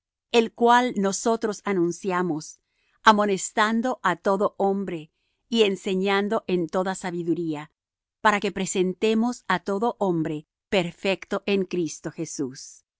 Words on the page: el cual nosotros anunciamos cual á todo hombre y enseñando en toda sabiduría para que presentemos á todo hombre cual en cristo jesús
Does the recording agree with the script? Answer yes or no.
no